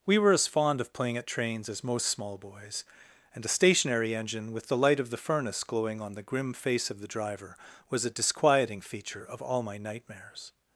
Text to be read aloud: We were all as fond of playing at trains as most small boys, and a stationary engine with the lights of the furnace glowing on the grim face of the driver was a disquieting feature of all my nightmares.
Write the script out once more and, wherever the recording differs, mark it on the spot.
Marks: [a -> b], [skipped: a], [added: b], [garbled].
We were [skipped: all] as fond of playing at trains as most small boys, and a stationary engine with the [lights -> light] of the furnace glowing on the grim face of the driver was a disquieting feature of all my nightmares.